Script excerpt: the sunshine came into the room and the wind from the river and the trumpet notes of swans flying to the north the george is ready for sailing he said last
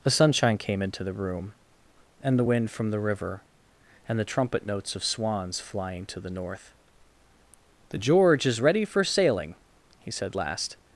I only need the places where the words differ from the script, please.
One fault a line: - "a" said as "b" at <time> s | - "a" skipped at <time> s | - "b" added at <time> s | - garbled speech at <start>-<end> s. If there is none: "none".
none